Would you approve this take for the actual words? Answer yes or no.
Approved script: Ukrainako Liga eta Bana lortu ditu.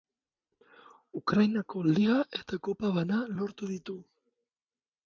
no